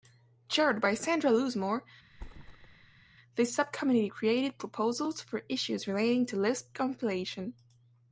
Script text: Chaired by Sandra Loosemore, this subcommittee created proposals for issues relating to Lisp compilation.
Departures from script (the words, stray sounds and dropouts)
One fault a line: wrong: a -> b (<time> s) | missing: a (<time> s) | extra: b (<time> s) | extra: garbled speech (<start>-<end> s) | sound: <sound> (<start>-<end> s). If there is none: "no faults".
sound: thud (2.1-3.0 s)